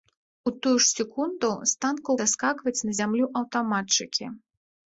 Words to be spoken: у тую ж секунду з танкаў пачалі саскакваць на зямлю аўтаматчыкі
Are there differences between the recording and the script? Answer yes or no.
yes